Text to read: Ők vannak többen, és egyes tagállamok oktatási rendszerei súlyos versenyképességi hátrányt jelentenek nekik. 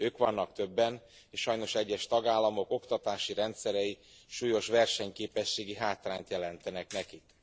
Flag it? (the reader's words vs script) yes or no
yes